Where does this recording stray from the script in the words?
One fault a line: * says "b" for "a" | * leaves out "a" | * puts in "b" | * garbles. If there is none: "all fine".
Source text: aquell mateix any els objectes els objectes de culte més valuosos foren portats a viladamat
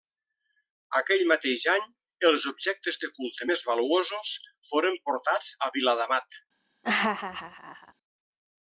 * leaves out "els objectes"